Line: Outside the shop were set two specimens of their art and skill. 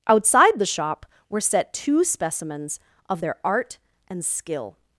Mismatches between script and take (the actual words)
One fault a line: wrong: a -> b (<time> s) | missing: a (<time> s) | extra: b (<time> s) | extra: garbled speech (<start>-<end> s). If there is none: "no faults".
no faults